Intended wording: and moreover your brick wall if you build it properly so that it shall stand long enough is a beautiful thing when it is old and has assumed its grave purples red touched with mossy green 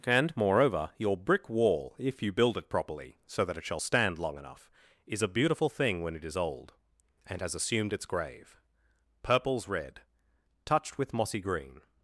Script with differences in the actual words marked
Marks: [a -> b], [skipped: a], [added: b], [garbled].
and moreover your brick wall if you build it properly so that it shall stand long enough is a beautiful thing when it is old and has assumed its grave purples red touched with mossy green